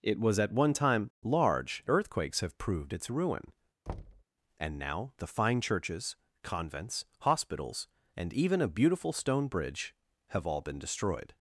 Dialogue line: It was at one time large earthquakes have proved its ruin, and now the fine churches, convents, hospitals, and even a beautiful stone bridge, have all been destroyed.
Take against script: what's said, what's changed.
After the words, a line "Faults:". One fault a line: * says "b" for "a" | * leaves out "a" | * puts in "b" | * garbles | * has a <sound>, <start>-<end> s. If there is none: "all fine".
It was at one time large earthquakes have proved its ruin, and now the fine churches, convents, hospitals, and even a beautiful stone bridge, have all been destroyed.
Faults:
* has a thud, 3.9-4.2 s